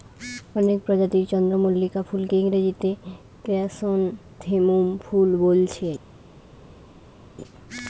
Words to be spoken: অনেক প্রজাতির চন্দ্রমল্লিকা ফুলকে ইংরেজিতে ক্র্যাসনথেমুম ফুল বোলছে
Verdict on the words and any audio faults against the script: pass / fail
pass